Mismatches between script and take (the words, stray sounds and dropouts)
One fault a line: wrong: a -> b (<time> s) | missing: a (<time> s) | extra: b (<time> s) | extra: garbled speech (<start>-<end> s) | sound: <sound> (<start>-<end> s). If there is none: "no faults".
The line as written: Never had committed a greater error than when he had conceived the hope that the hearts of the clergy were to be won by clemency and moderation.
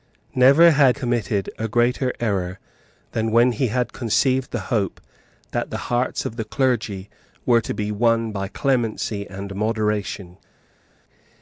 no faults